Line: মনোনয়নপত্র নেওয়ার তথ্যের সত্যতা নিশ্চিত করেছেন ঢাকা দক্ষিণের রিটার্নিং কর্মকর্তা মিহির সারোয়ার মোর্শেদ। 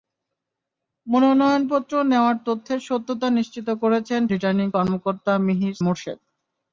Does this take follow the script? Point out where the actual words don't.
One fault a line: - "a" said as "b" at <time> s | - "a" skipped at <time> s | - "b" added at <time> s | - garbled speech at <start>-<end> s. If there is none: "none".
- "ঢাকা দক্ষিণের" skipped at 4.2 s
- "সারোয়ার" skipped at 5.7 s